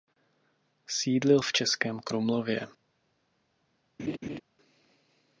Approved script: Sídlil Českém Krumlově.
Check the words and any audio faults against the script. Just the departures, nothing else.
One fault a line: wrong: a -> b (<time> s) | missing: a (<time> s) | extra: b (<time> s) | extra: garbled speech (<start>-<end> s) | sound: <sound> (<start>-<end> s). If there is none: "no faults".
extra: v (1.4 s)
sound: laugh (4.0-4.4 s)